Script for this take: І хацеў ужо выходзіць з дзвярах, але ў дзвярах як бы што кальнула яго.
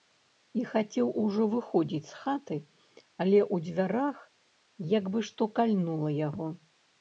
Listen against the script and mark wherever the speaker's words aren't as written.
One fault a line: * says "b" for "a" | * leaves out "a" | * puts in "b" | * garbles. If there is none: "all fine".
* says "хаты" for "дзвярах"